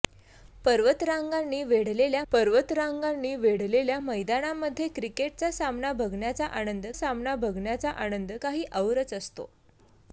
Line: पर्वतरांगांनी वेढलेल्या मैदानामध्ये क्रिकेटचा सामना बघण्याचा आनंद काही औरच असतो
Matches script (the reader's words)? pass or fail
fail